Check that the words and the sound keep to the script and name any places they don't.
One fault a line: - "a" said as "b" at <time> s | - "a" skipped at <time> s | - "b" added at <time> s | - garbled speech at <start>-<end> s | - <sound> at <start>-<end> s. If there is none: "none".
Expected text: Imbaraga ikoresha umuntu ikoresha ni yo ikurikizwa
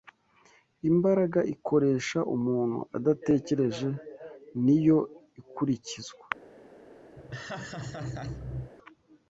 - "ikoresha" said as "adatekereje" at 3.0 s
- laugh at 7.2-8.7 s